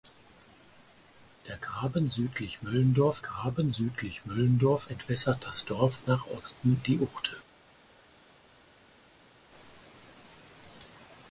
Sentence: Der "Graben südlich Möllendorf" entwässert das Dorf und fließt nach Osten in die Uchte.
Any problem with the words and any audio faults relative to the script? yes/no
yes